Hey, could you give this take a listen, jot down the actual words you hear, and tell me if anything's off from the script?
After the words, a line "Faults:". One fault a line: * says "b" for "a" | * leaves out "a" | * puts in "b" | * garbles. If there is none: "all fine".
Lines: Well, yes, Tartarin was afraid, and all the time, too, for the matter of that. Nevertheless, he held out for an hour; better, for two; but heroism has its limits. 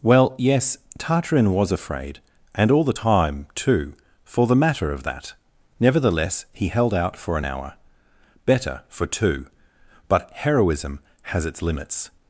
Well, yes, Tartarin was afraid, and all the time, too, for the matter of that. Nevertheless, he held out for an hour; better, for two; but heroism has its limits.
Faults:
all fine